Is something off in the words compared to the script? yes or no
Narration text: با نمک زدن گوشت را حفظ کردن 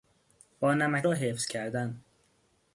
yes